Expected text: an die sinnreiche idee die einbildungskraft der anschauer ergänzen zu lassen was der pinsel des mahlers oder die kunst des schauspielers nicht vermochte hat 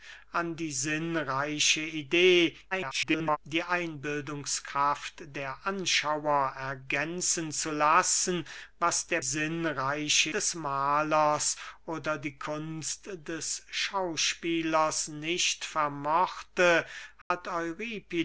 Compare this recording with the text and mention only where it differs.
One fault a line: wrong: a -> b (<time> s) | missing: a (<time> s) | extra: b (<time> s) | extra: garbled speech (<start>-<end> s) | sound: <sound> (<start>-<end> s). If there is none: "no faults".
extra: garbled speech (2.7-3.4 s)
wrong: pinsel -> sinnreiche (9.2 s)
sound: dropout (17.2-17.3 s)